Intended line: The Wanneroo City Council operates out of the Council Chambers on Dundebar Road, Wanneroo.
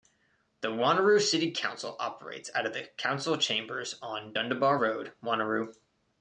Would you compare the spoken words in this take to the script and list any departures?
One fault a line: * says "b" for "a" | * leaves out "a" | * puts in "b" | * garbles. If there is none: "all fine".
all fine